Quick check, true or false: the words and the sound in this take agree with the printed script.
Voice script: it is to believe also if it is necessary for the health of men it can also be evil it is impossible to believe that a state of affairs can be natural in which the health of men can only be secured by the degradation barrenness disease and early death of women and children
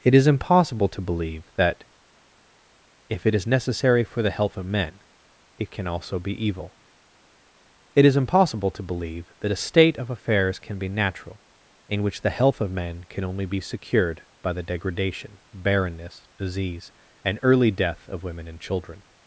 false